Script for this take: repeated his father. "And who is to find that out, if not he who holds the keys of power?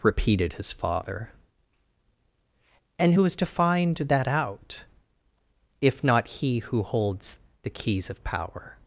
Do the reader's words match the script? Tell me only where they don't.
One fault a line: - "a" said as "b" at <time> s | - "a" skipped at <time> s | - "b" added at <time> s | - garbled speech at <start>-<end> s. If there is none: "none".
none